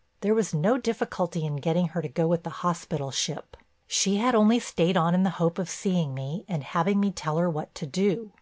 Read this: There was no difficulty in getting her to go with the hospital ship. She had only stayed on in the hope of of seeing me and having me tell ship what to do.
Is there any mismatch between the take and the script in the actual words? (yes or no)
yes